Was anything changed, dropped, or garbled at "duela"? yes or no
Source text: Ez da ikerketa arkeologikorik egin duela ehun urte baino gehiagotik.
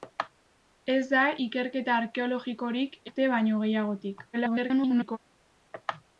yes